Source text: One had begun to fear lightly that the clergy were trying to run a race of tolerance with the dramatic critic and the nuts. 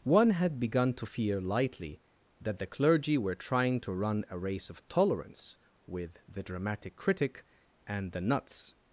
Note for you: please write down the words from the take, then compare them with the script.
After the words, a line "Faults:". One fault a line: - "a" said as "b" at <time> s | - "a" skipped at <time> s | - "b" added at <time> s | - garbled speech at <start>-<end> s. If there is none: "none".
One had begun to fear lightly that the clergy were trying to run a race of tolerance with the dramatic critic and the nuts.
Faults:
none